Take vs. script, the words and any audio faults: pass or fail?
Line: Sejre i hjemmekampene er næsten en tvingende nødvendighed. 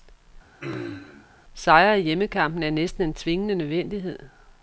fail